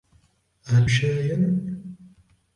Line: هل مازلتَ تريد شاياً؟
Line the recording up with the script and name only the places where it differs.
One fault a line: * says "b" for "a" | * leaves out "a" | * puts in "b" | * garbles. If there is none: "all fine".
* leaves out "مازلتَ تريد"